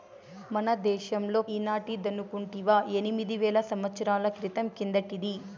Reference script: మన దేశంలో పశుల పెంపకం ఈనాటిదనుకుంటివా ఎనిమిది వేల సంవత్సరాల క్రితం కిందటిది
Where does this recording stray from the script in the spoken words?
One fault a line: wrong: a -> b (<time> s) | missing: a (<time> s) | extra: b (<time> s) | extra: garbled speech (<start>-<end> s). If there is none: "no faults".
missing: పశుల పెంపకం (1.4 s)